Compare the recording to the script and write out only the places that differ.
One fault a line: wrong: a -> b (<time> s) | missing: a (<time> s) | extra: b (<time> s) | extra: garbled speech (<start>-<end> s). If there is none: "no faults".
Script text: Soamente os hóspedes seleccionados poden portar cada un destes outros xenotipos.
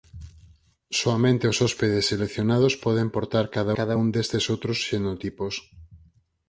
extra: cada (3.8 s)